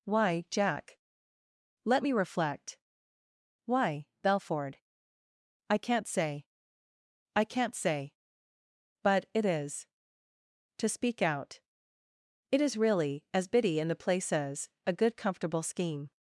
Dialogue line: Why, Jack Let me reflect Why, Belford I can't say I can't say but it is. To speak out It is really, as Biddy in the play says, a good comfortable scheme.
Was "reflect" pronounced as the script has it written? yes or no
yes